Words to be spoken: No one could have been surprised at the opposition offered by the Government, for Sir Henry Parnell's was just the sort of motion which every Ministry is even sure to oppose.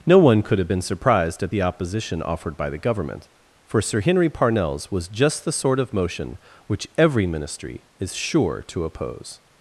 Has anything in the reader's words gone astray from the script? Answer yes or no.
yes